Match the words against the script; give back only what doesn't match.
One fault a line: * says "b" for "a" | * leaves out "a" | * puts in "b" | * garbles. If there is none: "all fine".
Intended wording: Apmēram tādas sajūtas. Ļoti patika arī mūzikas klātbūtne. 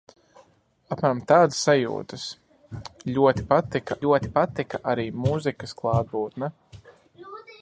* puts in "ļoti patika"